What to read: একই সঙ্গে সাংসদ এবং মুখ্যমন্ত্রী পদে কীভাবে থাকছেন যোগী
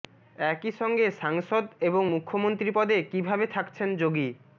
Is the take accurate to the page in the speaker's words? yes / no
yes